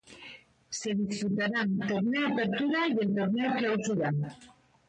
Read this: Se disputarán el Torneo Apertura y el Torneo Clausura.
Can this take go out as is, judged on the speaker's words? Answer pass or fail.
fail